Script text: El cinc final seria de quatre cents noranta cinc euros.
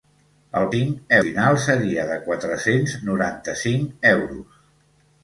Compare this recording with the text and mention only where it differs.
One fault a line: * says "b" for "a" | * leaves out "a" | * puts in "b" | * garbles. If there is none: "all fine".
all fine